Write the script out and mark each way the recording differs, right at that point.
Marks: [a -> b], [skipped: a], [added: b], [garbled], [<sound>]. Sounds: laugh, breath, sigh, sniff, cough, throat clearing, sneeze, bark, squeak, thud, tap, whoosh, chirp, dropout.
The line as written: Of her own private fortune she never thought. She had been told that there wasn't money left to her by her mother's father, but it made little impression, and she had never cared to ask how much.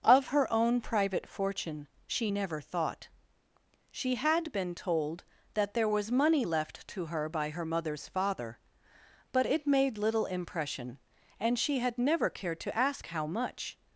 Of her own private fortune she never thought. She had been told that there [wasn't -> was] money left to her by her mother's father, but it made little impression, and she had never cared to ask how much.